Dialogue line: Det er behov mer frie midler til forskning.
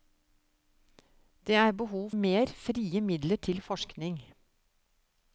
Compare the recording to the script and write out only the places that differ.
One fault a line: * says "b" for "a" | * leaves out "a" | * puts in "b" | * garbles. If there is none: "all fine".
all fine